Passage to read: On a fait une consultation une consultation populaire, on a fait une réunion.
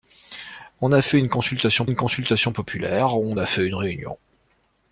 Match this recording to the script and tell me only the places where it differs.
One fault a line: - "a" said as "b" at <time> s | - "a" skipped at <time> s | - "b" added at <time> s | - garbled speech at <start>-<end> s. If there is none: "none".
none